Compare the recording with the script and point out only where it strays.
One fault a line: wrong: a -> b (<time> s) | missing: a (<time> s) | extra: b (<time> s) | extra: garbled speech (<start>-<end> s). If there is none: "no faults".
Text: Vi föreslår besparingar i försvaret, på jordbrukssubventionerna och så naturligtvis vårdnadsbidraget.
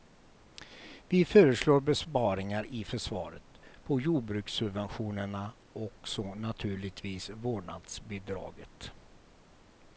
no faults